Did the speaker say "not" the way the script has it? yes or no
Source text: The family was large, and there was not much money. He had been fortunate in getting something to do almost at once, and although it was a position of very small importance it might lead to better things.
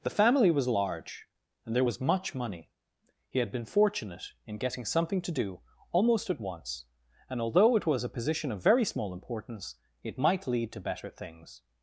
no